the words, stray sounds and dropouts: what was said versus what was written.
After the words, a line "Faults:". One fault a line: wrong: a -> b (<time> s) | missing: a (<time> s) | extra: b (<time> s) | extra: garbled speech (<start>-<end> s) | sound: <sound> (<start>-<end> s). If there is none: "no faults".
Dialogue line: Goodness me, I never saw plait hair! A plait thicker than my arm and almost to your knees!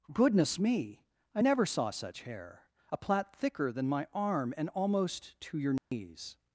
Goodness me, I never saw such hair! A plait thicker than my arm and almost to your knees!
Faults:
wrong: plait -> such (1.9 s)
sound: dropout (5.8-5.9 s)